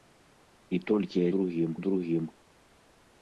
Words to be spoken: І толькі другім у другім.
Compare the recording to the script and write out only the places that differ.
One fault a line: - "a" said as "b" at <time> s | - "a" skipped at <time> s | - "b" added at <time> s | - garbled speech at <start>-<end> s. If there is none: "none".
none